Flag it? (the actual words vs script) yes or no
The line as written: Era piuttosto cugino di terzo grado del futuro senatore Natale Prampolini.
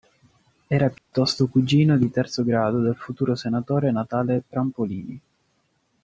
no